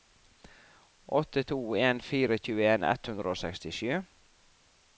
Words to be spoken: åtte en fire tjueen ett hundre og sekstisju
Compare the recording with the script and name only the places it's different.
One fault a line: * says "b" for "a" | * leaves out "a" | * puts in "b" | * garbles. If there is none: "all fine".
* puts in "to"